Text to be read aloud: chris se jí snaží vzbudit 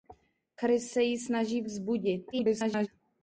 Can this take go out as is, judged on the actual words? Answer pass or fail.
fail